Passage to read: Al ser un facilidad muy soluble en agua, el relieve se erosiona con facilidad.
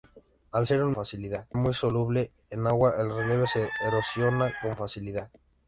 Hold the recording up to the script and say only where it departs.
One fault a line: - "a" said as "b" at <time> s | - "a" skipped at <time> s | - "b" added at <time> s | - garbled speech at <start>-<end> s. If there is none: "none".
none